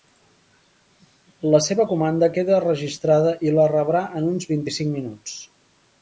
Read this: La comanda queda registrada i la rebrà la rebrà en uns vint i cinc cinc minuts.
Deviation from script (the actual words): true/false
true